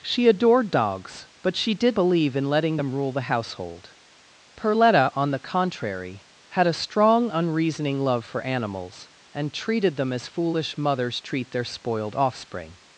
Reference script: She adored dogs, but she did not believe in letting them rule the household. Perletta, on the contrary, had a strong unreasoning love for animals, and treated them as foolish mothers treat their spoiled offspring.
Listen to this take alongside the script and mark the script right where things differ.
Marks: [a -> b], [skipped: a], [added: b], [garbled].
She adored dogs, but she did [skipped: not] believe in letting them rule the household. Perletta, on the contrary, had a strong unreasoning love for animals, and treated them as foolish mothers treat their spoiled offspring.